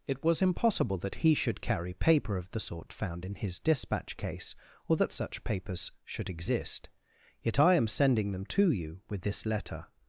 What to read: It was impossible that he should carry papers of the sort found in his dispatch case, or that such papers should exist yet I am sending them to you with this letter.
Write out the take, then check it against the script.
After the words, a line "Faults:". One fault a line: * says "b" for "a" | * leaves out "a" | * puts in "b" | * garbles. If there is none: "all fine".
It was impossible that he should carry paper of the sort found in his dispatch case, or that such papers should exist yet I am sending them to you with this letter.
Faults:
* says "paper" for "papers"